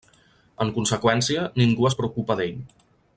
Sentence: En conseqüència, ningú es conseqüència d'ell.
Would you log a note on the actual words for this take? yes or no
yes